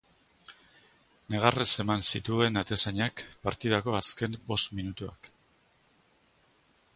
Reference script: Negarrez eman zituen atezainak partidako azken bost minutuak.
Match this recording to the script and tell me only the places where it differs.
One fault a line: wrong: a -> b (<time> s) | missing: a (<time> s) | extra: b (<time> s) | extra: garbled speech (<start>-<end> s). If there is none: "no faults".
no faults